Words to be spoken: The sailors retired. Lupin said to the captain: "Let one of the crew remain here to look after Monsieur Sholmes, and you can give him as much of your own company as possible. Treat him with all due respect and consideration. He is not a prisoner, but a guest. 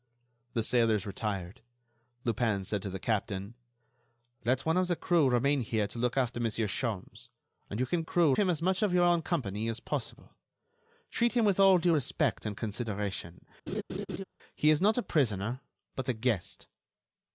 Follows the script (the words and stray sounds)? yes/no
no